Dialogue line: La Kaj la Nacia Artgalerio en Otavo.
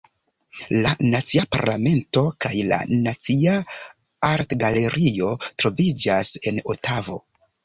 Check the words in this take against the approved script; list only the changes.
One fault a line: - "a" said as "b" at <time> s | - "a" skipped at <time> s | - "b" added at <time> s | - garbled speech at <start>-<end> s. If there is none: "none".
- "Nacia Parlamento" added at 1.1 s
- "troviĝas" added at 5.5 s